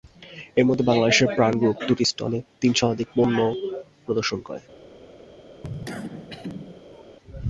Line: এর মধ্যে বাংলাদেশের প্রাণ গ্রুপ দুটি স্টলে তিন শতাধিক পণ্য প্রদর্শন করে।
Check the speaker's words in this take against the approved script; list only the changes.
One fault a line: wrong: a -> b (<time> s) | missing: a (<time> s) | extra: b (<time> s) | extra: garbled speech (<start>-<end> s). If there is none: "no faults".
no faults